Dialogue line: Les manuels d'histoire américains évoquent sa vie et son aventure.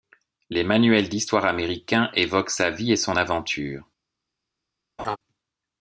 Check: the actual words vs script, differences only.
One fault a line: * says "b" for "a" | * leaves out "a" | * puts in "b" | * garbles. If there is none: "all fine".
all fine